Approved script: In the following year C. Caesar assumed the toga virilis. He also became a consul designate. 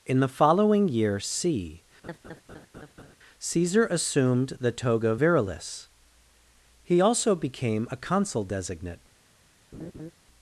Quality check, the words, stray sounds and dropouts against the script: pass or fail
fail